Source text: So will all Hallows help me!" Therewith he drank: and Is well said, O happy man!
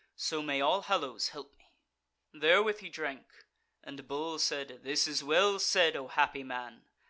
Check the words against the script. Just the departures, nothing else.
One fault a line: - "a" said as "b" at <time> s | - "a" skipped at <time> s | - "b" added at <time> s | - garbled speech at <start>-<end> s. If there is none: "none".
- "will" said as "may" at 0.4 s
- "Bull said This" added at 4.1 s